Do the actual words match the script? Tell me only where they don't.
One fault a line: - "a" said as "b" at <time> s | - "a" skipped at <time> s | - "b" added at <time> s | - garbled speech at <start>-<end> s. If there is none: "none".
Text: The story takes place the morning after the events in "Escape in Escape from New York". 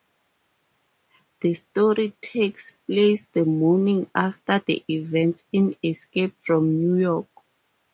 - "in Escape" skipped at 6.3 s